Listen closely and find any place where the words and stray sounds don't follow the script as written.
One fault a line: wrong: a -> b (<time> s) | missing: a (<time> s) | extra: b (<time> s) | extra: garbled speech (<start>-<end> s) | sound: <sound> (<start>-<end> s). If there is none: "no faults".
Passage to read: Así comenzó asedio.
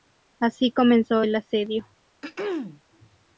extra: el (1.2 s)
sound: throat clearing (2.2-2.8 s)